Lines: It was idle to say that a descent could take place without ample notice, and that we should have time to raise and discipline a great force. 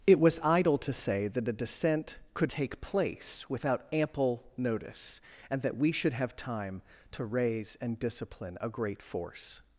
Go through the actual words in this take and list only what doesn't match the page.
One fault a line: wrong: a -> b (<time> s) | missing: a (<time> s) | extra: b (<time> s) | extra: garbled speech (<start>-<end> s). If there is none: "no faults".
no faults